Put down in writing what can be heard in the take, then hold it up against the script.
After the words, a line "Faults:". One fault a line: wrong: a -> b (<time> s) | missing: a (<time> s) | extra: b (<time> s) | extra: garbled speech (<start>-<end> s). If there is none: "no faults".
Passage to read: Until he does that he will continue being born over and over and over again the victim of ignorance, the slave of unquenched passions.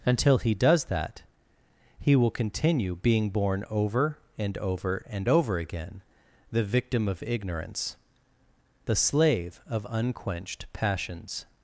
Until he does that he will continue being born over and over and over again the victim of ignorance, the slave of unquenched passions.
Faults:
no faults